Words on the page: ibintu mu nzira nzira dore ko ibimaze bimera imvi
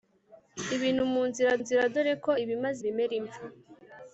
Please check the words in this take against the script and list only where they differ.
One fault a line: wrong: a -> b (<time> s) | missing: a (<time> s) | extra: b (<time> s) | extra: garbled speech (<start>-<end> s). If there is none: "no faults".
no faults